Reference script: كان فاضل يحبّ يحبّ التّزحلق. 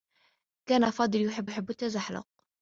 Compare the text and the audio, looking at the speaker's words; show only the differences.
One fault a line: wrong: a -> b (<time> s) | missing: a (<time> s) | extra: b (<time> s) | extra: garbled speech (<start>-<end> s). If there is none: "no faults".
no faults